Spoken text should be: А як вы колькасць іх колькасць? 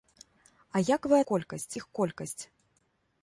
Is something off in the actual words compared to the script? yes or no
no